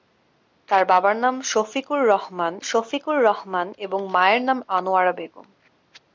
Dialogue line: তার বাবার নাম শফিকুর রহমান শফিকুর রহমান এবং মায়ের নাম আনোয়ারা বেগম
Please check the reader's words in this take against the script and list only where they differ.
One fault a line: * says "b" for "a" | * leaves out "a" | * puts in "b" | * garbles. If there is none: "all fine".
all fine